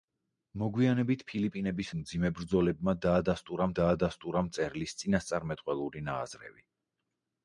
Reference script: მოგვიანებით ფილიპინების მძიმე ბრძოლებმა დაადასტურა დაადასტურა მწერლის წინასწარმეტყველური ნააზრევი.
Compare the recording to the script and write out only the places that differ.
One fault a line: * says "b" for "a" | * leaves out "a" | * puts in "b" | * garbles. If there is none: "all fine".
all fine